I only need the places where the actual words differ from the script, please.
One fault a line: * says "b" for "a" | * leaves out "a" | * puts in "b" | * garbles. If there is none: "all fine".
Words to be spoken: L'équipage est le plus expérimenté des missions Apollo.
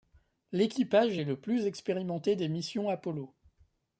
all fine